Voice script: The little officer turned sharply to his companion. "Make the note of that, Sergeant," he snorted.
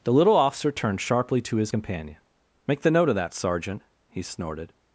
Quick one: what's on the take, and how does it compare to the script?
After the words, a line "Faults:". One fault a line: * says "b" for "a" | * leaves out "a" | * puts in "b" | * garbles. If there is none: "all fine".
The little officer turned sharply to his companion. "Make the note of that, Sergeant," he snorted.
Faults:
all fine